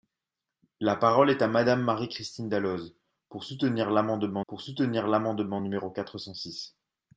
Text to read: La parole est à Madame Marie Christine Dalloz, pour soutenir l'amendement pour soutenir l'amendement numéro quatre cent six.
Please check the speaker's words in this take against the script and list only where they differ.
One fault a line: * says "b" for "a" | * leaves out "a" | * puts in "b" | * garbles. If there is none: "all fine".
all fine